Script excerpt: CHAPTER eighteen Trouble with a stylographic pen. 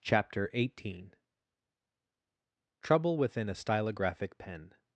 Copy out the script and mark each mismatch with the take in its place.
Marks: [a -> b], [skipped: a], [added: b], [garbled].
CHAPTER eighteen Trouble [with -> within] a stylographic pen.